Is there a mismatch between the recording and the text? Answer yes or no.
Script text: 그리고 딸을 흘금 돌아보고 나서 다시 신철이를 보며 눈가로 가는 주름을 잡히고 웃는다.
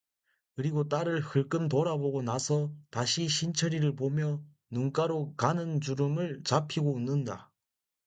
no